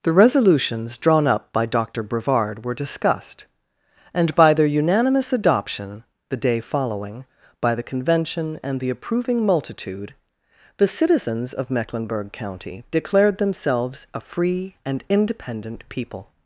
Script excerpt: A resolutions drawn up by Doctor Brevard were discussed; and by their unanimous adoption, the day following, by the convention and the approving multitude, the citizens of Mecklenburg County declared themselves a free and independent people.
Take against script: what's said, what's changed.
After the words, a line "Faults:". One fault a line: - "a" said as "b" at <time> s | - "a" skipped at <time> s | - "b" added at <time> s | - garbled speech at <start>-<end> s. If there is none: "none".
The resolutions drawn up by Doctor Brevard were discussed; and by their unanimous adoption, the day following, by the convention and the approving multitude, the citizens of Mecklenburg County declared themselves a free and independent people.
Faults:
- "A" said as "The" at 0.0 s